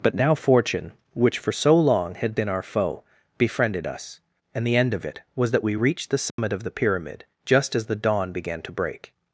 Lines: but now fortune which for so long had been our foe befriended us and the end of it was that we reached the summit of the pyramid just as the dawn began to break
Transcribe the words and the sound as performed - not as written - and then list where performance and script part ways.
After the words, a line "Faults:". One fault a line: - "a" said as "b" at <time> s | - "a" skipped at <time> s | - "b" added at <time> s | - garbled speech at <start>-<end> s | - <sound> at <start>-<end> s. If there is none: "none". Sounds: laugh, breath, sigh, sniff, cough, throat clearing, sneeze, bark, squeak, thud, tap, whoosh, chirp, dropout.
but now fortune which for so long had been our foe befriended us and the end of it was that we reached the summit of the pyramid just as the dawn began to break
Faults:
- dropout at 6.3-6.4 s